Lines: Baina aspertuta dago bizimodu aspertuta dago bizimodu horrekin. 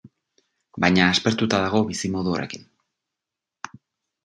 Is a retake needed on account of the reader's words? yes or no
yes